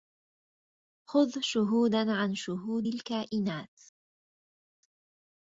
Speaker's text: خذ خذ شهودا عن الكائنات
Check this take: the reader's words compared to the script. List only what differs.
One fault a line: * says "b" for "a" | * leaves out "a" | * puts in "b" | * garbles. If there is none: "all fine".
* leaves out "خذ"
* puts in "شهود"